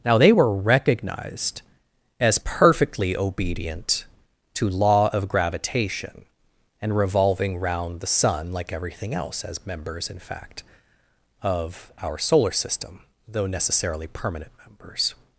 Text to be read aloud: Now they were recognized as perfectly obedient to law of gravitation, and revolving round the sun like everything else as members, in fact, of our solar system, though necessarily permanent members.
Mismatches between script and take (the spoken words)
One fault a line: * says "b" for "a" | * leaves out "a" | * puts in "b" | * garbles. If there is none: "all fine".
all fine